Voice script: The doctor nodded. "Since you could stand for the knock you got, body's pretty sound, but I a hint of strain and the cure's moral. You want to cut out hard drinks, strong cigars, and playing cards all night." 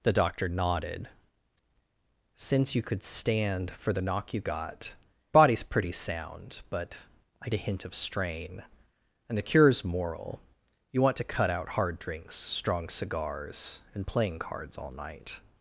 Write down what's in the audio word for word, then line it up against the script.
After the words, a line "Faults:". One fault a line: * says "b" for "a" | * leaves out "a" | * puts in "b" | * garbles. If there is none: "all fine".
The doctor nodded. "Since you could stand for the knock you got, body's pretty sound, but I a hint of strain and the cure's moral. You want to cut out hard drinks, strong cigars, and playing cards all night."
Faults:
all fine